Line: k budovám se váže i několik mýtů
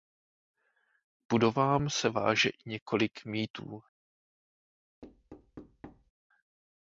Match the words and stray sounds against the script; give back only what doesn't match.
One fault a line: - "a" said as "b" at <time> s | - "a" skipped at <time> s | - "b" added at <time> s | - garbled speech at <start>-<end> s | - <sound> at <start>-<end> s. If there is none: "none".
- thud at 5.0-6.1 s